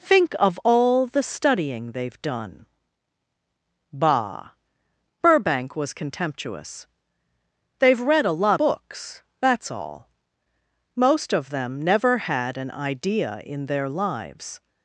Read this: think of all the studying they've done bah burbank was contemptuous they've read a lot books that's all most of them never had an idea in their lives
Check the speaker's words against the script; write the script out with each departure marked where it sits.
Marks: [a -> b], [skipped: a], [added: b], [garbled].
think of all the studying they've done bah burbank was contemptuous they've read a lot books that's all most of them never had an idea in their lives